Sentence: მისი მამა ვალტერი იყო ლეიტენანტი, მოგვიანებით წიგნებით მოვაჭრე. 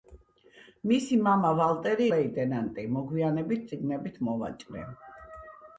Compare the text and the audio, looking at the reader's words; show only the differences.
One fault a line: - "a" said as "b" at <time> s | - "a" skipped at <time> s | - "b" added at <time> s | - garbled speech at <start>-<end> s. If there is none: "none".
- "იყო" skipped at 2.1 s